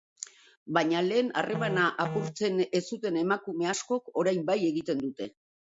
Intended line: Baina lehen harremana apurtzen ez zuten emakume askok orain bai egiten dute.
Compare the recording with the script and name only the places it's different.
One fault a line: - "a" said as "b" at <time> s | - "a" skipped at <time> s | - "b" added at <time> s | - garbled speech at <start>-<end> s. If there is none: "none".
none